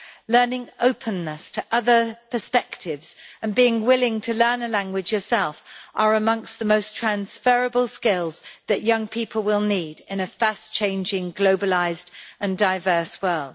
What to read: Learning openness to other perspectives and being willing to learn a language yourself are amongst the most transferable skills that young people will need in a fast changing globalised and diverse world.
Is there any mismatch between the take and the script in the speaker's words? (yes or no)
no